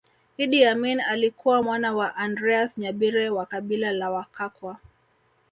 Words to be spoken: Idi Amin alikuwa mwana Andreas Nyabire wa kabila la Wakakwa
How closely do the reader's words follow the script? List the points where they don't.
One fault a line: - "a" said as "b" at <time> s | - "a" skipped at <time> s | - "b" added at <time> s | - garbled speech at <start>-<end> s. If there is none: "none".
- "wa" added at 1.9 s